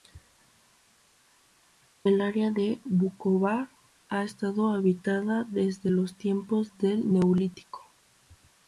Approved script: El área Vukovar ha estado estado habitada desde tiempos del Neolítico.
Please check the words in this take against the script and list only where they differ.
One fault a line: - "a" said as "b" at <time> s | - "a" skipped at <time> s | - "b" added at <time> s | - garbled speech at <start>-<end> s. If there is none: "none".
- "de" added at 2.5 s
- "estado" skipped at 4.7 s
- "los" added at 5.9 s